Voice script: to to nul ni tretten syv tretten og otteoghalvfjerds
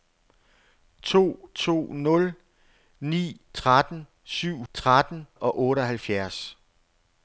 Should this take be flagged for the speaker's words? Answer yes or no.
no